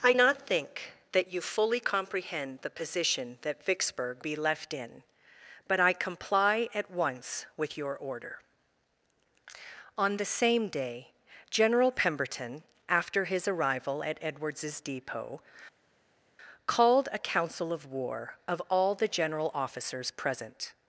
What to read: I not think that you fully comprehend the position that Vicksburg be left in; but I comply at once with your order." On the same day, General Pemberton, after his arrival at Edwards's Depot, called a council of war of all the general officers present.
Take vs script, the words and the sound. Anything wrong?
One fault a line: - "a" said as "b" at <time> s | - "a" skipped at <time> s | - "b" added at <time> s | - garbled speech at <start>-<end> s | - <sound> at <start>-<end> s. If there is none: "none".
none